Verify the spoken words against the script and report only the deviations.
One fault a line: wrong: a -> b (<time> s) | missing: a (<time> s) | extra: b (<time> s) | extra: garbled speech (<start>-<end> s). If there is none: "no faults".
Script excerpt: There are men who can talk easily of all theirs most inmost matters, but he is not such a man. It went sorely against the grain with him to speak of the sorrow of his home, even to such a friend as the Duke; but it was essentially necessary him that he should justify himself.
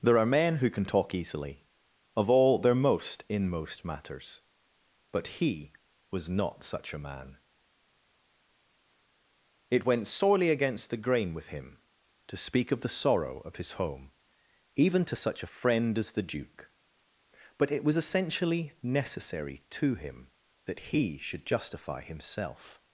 wrong: theirs -> their (2.6 s)
wrong: is -> was (6.1 s)
extra: to (19.7 s)